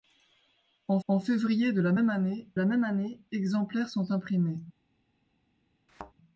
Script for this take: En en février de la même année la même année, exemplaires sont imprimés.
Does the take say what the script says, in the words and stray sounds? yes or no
no